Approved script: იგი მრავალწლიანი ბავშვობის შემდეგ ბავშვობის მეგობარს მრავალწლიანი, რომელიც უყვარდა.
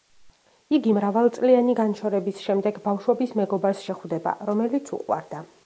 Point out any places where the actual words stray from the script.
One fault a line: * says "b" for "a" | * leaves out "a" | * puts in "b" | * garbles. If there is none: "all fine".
* says "განშორების" for "ბავშვობის"
* says "შეხვდება" for "მრავალწლიანი"